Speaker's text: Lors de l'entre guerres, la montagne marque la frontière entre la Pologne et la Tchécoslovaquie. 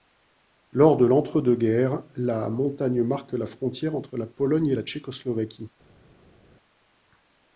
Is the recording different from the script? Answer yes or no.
yes